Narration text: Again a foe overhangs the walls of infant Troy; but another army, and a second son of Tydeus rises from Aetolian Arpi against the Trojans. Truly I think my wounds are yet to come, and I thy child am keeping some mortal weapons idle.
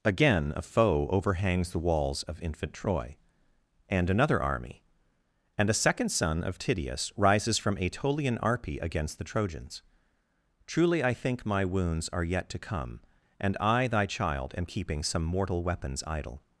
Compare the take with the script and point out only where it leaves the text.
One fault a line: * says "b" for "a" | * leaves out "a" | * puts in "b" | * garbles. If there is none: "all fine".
* says "and" for "but"